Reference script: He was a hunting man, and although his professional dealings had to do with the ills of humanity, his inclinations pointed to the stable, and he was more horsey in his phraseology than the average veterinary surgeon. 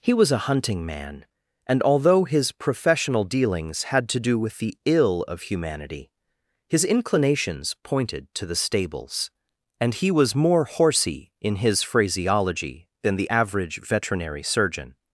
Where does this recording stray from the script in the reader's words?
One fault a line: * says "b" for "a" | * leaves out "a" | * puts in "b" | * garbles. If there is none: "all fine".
* says "ill" for "ills"
* says "stables" for "stable"